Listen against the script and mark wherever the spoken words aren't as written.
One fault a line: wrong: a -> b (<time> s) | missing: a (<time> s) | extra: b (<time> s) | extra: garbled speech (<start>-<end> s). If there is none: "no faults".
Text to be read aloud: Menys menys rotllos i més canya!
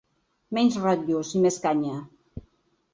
missing: menys (0.8 s)